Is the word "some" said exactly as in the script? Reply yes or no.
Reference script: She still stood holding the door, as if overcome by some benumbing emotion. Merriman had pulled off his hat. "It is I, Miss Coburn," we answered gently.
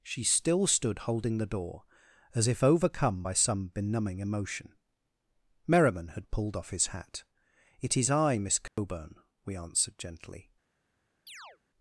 yes